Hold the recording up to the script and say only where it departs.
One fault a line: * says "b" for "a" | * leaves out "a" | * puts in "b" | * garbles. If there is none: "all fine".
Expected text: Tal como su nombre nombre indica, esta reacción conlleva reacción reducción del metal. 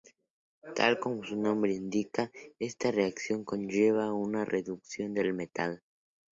* leaves out "nombre"
* says "una" for "reacción"